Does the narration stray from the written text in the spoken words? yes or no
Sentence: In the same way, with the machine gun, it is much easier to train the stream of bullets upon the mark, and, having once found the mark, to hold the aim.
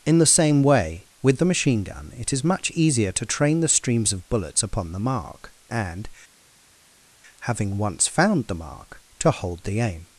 yes